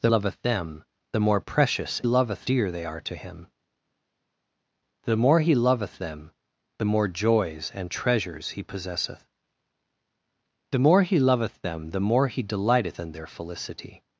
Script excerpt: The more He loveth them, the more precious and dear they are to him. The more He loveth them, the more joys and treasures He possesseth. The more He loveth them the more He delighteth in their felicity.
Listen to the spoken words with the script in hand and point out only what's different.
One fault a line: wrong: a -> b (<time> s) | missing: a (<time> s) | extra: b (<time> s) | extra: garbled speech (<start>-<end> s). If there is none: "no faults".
missing: more He (0.1 s)
wrong: and -> loveth (2.0 s)